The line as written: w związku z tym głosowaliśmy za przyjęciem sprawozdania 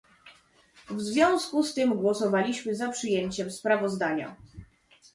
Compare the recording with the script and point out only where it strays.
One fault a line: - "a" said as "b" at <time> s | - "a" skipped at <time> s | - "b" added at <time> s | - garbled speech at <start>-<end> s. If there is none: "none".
none